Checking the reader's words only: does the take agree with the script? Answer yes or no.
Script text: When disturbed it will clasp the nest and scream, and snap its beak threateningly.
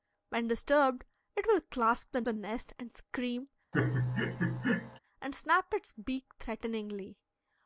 no